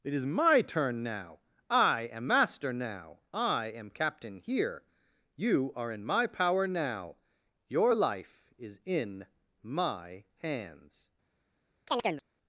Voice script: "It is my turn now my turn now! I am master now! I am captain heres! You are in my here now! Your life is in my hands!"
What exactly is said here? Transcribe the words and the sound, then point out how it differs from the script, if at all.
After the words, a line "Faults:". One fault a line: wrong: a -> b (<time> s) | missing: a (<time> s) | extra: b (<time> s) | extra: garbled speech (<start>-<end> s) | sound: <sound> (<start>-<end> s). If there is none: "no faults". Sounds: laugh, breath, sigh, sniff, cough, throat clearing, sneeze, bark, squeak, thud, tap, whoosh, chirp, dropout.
"It is my turn now! I am master now! I am captain here! You are in my power now! Your life is in my hands!"
Faults:
missing: my turn now (1.4 s)
wrong: heres -> here (4.4 s)
wrong: here -> power (6.3 s)
sound: chirp (11.9-12.2 s)